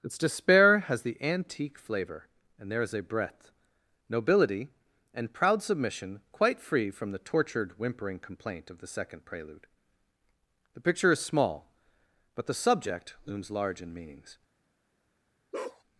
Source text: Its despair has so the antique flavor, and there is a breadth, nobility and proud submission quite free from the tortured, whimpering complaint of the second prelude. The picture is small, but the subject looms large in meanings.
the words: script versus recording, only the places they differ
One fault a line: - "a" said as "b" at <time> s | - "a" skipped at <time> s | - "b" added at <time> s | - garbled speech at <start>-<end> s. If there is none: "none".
- "so" skipped at 1.0 s